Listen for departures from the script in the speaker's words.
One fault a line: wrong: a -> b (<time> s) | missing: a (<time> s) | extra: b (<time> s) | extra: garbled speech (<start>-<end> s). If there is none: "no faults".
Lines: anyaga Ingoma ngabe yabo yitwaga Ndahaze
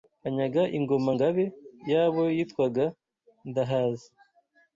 no faults